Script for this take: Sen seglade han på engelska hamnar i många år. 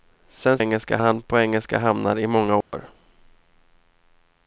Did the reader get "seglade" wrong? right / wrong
wrong